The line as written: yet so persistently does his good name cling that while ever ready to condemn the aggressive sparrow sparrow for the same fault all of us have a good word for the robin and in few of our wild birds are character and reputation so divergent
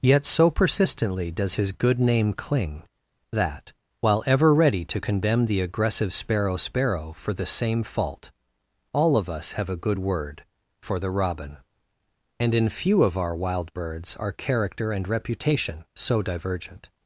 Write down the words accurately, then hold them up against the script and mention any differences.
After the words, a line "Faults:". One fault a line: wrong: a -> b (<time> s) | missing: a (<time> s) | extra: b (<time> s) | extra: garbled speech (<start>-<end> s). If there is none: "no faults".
yet so persistently does his good name cling that while ever ready to condemn the aggressive sparrow sparrow for the same fault all of us have a good word for the robin and in few of our wild birds are character and reputation so divergent
Faults:
no faults